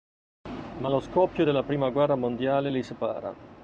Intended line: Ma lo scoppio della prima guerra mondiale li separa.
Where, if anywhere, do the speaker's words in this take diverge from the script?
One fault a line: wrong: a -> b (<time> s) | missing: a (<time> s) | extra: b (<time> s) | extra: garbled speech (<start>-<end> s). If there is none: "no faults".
no faults